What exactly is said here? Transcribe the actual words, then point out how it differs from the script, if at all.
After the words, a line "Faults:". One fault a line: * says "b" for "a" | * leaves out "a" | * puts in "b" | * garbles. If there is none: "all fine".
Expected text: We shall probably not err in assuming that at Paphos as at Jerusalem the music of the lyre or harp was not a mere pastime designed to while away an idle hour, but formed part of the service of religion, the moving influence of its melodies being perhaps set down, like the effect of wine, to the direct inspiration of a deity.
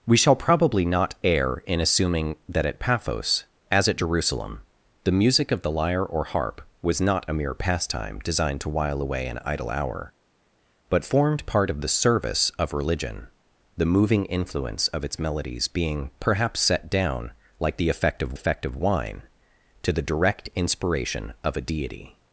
We shall probably not err in assuming that at Paphos as at Jerusalem the music of the lyre or harp was not a mere pastime designed to while away an idle hour, but formed part of the service of religion, the moving influence of its melodies being perhaps set down, like the effect of effect of wine, to the direct inspiration of a deity.
Faults:
* puts in "effect of"